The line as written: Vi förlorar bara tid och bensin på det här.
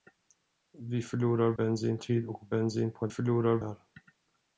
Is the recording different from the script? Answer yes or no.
yes